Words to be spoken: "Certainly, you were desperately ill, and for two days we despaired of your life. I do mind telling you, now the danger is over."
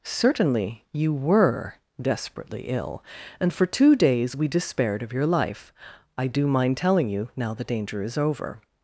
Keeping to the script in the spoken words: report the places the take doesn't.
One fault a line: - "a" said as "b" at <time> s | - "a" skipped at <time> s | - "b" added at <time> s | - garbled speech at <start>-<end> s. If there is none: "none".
none